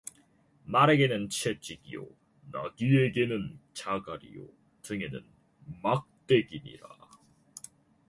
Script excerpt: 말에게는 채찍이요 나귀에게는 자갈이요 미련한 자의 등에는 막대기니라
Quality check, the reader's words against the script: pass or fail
fail